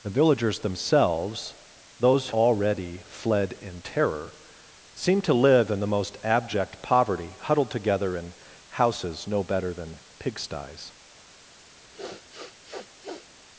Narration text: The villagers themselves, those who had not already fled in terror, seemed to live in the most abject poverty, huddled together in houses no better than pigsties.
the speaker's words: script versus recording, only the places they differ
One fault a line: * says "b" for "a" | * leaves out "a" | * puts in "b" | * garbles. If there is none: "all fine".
* leaves out "who had not"